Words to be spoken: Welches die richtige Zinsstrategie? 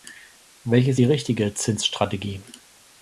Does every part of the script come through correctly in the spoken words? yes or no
yes